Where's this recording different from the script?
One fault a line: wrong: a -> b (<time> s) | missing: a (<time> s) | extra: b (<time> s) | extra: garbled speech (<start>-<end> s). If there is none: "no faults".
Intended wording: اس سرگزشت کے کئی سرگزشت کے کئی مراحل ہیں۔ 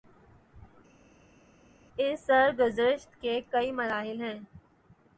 missing: سرگزشت کے کئی (3.7 s)